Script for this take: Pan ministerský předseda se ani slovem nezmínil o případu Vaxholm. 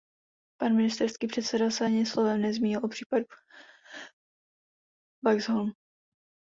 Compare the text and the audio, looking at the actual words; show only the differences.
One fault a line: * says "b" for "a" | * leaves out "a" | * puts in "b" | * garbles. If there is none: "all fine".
all fine